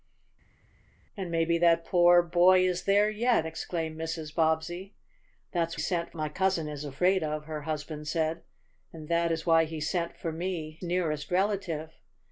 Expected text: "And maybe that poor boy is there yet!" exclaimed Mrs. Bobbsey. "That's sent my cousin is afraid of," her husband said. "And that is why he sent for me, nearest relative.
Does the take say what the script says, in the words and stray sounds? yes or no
yes